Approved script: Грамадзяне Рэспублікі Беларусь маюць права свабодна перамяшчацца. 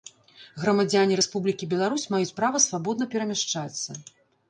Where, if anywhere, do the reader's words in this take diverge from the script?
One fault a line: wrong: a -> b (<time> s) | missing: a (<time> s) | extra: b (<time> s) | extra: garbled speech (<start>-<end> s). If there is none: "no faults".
no faults